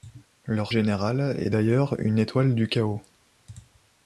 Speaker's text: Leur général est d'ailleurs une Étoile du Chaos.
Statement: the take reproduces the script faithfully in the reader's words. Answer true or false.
true